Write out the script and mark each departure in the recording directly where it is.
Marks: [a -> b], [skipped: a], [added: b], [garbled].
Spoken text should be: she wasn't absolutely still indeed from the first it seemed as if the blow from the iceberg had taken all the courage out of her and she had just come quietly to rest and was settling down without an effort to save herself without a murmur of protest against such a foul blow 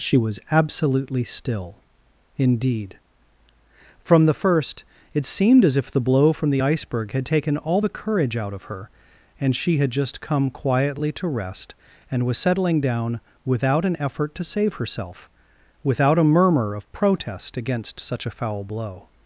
she [wasn't -> was] absolutely still indeed from the first it seemed as if the blow from the iceberg had taken all the courage out of her and she had just come quietly to rest and was settling down without an effort to save herself without a murmur of protest against such a foul blow